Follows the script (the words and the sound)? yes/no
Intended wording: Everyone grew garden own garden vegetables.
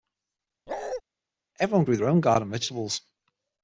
no